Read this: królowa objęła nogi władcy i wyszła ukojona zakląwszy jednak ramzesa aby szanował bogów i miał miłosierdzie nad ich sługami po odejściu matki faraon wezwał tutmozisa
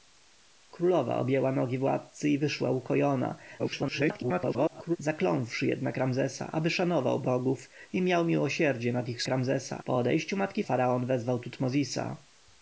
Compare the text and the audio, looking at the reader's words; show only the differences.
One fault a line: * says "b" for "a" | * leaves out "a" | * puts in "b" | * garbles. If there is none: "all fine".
* garbles
* says "ramzesa" for "sługami"